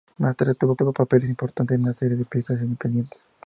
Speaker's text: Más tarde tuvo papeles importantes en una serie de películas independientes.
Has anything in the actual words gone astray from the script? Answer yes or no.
yes